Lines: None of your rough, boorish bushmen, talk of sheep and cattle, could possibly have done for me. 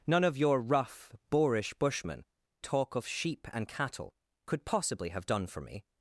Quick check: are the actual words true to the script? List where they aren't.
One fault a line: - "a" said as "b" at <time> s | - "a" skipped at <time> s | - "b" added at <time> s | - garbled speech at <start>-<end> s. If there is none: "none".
none